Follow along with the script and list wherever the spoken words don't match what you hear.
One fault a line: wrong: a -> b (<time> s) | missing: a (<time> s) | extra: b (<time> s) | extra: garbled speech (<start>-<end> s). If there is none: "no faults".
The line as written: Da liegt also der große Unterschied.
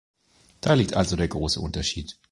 no faults